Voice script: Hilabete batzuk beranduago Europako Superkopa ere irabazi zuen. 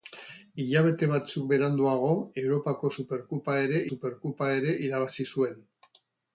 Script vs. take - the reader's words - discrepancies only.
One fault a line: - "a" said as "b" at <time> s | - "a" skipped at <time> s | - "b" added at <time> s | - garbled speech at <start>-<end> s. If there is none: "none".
- "Superkopa ere" added at 3.9 s